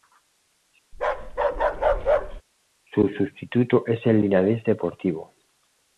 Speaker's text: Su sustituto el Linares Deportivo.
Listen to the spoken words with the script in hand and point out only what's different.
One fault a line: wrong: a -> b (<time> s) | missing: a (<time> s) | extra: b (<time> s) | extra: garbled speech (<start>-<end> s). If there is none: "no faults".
extra: es (3.8 s)